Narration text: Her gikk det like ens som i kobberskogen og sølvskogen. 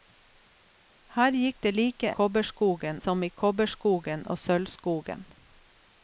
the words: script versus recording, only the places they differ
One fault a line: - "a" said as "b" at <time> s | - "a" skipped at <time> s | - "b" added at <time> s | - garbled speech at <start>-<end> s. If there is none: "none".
- "ens" said as "kobberskogen" at 2.2 s